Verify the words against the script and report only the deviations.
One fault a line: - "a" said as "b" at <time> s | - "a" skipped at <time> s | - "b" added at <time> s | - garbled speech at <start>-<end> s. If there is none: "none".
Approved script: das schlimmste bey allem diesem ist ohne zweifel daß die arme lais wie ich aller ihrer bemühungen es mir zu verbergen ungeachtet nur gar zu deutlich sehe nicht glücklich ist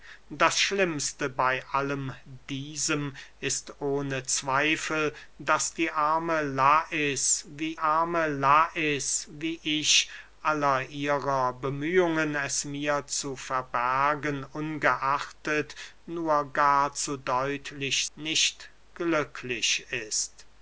- "arme lais wie" added at 7.8 s
- "sehe" skipped at 18.1 s